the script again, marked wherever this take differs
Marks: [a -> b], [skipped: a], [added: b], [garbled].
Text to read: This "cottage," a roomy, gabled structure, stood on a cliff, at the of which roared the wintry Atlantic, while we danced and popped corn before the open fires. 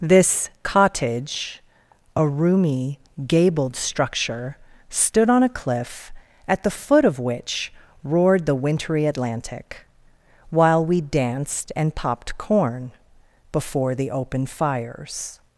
This "cottage," a roomy, gabled structure, stood on a cliff, at the [added: foot] of which roared the wintry Atlantic, while we danced and popped corn before the open fires.